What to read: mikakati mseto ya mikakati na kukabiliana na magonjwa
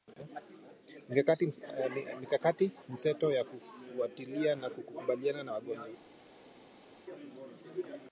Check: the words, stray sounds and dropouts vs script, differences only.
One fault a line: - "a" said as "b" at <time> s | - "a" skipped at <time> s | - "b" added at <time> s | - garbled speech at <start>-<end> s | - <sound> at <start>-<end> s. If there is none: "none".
- "mikakati" said as "kufuatilia" at 3.4 s